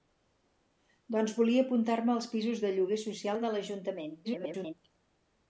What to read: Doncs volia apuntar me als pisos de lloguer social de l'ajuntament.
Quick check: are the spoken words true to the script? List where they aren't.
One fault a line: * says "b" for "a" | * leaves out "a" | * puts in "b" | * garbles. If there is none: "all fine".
* garbles